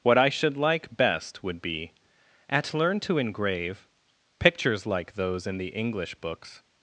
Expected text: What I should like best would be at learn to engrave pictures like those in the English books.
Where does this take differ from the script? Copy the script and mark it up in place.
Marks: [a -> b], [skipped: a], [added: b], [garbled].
What I should like best would be at learn to engrave pictures like those in the English books.